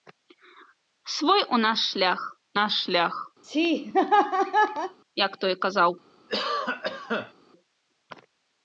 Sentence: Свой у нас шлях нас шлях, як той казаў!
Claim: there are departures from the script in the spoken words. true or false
false